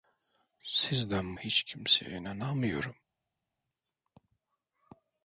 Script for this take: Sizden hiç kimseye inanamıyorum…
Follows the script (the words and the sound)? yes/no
yes